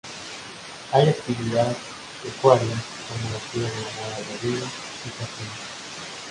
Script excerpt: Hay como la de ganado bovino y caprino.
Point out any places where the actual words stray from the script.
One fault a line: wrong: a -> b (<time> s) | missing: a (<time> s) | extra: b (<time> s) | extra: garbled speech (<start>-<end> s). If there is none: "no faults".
extra: actividad pecuaria (1.1 s)
extra: cría (3.5 s)